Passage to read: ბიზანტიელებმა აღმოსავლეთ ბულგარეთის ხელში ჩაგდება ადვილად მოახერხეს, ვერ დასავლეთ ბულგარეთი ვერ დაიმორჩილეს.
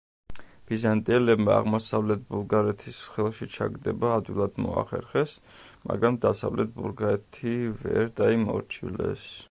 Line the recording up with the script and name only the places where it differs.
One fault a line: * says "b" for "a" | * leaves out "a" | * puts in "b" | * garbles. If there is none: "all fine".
* says "მაგრამ" for "ვერ"